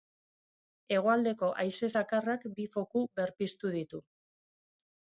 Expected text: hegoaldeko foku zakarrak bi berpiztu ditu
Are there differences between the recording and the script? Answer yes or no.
yes